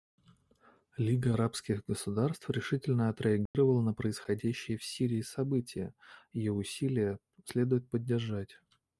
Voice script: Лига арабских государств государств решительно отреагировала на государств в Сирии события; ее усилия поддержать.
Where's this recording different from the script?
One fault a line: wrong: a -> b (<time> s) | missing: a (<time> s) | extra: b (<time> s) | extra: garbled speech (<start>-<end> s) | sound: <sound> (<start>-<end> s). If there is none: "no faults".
missing: государств (2.5 s)
sound: dropout (3.5-3.5 s)
wrong: государств -> происходящие (3.9 s)
extra: следует (7.4 s)